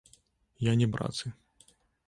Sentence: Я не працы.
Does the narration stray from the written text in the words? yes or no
no